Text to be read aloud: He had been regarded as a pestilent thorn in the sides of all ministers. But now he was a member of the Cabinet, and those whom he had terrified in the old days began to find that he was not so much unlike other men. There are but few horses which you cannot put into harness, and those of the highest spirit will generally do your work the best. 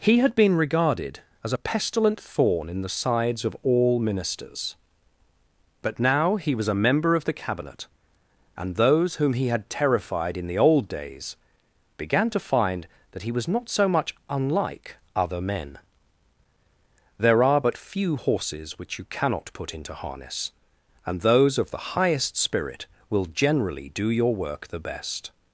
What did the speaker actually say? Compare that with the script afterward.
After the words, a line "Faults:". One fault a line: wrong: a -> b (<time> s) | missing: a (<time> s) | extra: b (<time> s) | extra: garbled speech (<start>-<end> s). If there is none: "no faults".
He had been regarded as a pestilent thorn in the sides of all ministers. But now he was a member of the Cabinet, and those whom he had terrified in the old days began to find that he was not so much unlike other men. There are but few horses which you cannot put into harness, and those of the highest spirit will generally do your work the best.
Faults:
no faults